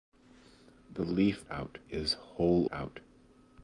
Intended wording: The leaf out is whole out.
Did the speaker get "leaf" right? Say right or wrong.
right